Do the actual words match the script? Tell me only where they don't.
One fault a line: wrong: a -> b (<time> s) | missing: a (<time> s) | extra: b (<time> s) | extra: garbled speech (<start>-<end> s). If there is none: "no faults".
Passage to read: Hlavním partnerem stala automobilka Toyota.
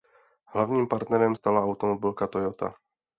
no faults